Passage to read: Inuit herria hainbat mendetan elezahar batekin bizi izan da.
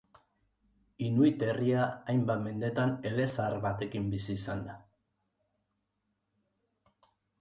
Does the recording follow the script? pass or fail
pass